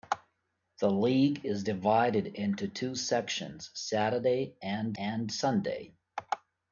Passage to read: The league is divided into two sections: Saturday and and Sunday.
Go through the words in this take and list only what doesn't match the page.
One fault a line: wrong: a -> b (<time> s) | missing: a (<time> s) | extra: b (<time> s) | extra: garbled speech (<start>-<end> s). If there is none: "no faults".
no faults